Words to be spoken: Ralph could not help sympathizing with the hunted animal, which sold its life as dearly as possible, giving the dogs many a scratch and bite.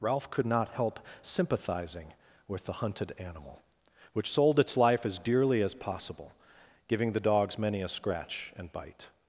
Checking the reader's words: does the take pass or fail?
pass